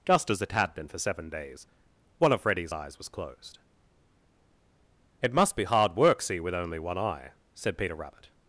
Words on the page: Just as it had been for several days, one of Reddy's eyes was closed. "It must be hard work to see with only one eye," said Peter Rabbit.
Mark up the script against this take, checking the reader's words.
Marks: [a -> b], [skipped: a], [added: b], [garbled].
Just as it had been for [several -> seven] days, one of Reddy's eyes was closed. "It must be hard work [skipped: to] see with only one eye," said Peter Rabbit.